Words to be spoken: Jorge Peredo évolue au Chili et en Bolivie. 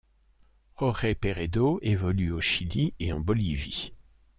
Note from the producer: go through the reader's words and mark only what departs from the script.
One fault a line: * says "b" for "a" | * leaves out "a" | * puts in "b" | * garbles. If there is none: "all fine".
all fine